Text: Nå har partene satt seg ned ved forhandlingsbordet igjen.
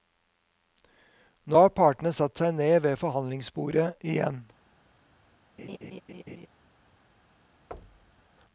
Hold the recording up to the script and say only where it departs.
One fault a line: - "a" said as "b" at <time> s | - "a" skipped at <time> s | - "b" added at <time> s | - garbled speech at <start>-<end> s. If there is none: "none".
none